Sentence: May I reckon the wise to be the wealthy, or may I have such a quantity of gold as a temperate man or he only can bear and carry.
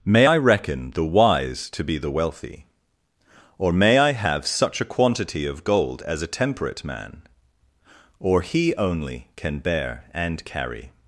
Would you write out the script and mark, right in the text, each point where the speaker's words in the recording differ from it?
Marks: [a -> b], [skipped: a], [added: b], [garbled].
May I reckon the wise to be the wealthy, or may I have such a quantity of gold as a temperate man or he only can bear and carry.